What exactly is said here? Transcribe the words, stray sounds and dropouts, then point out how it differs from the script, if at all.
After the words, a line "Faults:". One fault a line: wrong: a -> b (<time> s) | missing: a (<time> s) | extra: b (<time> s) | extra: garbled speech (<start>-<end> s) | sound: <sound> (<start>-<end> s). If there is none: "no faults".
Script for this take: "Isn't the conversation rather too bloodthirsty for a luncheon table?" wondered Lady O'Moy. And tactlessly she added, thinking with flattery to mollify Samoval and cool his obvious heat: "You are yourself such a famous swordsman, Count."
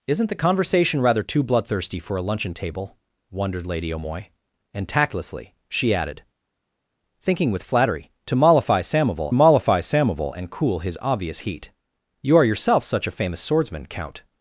"Isn't the conversation rather too bloodthirsty for a luncheon table?" wondered Lady O'Moy. And tactlessly she added, thinking with flattery to mollify Samoval mollify Samoval and cool his obvious heat: "You are yourself such a famous swordsman, Count."
Faults:
extra: mollify Samoval (9.3 s)